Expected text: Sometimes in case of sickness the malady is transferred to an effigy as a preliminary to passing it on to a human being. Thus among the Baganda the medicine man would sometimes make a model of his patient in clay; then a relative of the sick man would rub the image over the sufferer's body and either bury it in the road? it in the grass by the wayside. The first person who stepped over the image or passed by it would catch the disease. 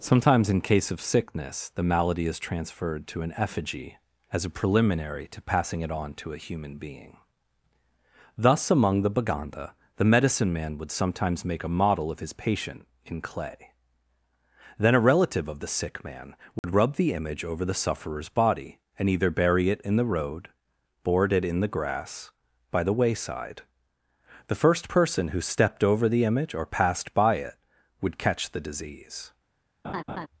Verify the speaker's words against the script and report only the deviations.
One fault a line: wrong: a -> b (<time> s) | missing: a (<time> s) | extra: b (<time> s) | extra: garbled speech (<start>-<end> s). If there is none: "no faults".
extra: board (21.0 s)